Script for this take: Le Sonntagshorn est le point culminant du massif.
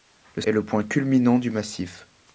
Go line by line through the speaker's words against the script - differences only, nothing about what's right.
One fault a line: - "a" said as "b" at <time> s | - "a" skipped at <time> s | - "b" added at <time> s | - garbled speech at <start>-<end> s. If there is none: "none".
- "Sonntagshorn" skipped at 0.4 s